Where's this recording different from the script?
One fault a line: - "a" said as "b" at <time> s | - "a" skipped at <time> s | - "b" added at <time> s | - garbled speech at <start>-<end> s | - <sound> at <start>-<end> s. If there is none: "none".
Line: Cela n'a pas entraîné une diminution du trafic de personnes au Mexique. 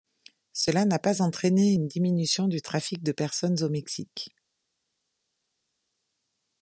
none